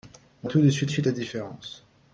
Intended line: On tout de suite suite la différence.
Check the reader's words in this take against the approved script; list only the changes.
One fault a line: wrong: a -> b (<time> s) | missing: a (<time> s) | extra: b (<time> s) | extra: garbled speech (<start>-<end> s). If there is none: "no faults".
no faults